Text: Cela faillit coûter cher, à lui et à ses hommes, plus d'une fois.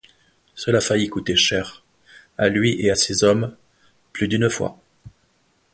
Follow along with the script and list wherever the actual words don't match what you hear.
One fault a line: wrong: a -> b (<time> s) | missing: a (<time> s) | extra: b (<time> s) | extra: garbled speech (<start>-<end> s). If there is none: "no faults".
no faults